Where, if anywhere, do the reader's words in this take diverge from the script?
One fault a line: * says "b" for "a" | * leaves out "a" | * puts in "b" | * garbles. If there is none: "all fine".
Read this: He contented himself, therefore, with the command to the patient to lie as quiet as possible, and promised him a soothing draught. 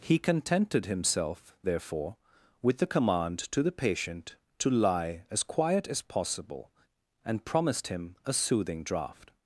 all fine